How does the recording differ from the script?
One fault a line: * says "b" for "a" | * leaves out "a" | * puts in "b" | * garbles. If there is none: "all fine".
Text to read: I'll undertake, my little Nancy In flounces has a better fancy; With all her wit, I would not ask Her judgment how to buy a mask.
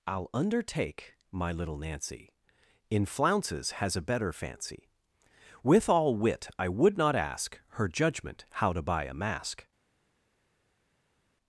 * leaves out "her"